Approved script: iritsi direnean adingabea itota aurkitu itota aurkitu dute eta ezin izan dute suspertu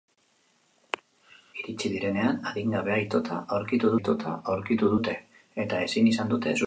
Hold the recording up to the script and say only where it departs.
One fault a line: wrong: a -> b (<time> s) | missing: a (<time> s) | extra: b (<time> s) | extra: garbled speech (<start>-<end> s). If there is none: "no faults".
no faults